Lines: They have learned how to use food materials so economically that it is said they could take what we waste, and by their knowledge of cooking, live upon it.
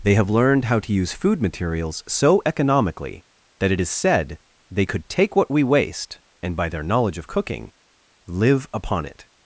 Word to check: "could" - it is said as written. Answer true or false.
true